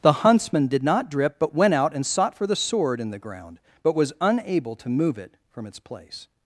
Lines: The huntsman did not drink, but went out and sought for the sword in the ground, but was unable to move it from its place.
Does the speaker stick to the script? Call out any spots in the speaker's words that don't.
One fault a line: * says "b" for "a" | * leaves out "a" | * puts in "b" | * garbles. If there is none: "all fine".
* says "drip" for "drink"